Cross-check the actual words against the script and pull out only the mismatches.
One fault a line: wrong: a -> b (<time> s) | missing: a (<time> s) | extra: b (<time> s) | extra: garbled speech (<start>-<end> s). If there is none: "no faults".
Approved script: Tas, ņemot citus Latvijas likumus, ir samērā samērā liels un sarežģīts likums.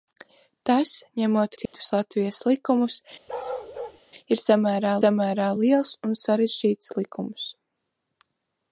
no faults